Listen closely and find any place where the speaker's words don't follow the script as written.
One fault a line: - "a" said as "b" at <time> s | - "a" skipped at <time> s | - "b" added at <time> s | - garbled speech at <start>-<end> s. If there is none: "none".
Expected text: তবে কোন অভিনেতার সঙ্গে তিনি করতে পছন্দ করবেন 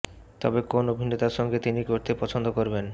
none